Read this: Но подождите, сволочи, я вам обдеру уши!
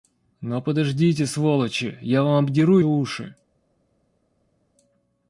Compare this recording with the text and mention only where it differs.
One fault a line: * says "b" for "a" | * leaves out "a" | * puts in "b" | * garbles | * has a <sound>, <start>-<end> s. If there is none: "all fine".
all fine